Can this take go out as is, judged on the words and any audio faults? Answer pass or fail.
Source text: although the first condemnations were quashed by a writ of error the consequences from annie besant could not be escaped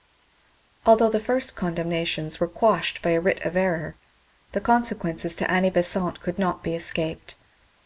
fail